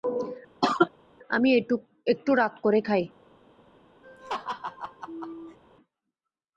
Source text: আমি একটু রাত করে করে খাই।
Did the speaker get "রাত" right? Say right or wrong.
right